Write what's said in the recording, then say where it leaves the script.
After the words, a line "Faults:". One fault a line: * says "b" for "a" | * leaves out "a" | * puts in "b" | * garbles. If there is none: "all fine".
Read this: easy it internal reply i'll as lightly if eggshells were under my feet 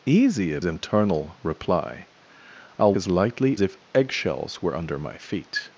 easy it internal reply i'll as lightly if eggshells were under my feet
Faults:
all fine